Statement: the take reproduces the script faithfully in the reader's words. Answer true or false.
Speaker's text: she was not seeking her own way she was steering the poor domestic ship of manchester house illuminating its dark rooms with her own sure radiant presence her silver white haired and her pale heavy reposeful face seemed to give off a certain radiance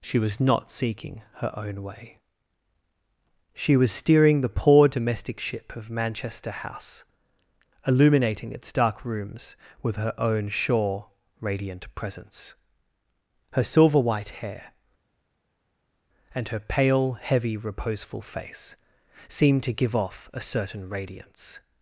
false